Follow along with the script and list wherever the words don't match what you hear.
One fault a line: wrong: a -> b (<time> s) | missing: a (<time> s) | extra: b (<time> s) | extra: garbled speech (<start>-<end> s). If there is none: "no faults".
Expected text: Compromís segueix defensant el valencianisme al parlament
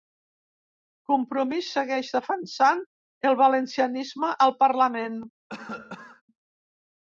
no faults